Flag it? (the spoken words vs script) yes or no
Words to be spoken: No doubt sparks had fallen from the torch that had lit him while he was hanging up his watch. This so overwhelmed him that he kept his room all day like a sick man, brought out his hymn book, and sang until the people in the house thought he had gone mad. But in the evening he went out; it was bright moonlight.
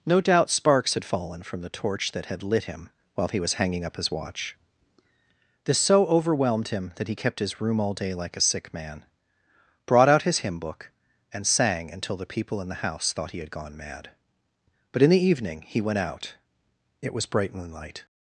no